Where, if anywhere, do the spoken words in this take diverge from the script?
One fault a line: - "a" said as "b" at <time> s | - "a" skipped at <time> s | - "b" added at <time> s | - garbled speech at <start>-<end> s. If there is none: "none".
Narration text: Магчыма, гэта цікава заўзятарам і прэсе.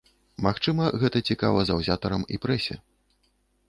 none